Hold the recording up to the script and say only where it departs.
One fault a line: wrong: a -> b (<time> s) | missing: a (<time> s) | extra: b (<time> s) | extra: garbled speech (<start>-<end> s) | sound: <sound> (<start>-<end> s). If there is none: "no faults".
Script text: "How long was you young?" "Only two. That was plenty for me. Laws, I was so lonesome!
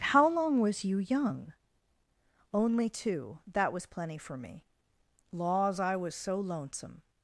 no faults